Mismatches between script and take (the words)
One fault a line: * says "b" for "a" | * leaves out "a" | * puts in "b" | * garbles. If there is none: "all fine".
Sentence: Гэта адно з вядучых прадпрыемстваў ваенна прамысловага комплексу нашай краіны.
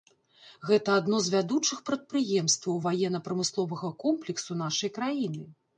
all fine